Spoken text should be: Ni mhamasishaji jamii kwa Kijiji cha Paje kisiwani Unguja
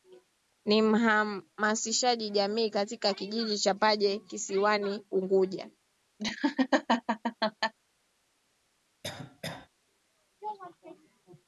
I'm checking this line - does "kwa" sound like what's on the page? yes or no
no